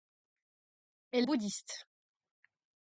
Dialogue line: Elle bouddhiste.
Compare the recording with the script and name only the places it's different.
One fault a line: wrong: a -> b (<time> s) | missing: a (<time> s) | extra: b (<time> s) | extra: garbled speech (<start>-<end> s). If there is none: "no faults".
no faults